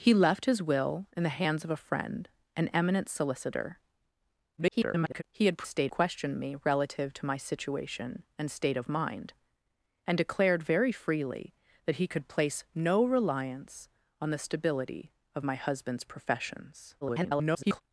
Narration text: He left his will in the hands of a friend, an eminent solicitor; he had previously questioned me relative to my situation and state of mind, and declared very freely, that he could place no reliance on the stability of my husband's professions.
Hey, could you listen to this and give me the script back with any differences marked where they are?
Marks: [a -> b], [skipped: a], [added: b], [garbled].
He left his will in the hands of a friend, an eminent solicitor; [garbled] he had [previously -> state] questioned me relative to my situation and state of mind, and declared very freely, that he could place no reliance on the stability of my husband's professions. [garbled]